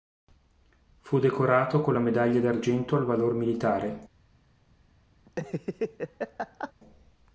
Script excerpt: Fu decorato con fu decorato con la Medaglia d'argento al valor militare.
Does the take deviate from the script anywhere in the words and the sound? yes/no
yes